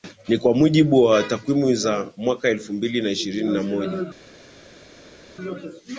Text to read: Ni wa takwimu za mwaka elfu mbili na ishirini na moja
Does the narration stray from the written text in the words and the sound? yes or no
yes